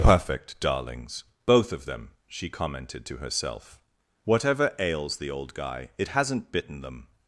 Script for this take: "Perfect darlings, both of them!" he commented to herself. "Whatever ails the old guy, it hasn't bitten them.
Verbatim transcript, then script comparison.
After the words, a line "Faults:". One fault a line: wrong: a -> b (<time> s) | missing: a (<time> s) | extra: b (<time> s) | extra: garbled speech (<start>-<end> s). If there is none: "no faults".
"Perfect darlings, both of them!" she commented to herself. "Whatever ails the old guy, it hasn't bitten them.
Faults:
wrong: he -> she (2.3 s)